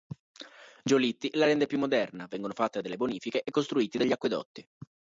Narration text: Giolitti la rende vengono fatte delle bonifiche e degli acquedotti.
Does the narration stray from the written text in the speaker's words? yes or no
yes